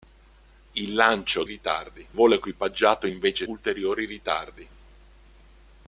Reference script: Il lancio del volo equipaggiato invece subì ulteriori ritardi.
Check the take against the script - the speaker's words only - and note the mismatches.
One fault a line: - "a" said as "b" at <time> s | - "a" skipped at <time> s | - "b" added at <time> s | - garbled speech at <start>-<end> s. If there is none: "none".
- "del" said as "ritardi" at 1.4 s
- "subì" skipped at 3.5 s